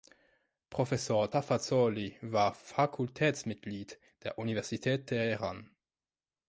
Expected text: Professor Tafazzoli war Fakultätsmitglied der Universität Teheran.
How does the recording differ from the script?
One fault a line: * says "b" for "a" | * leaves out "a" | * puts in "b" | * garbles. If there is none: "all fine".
all fine